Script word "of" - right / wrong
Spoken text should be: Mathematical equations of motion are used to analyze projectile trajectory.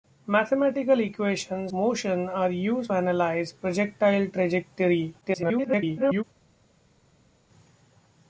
wrong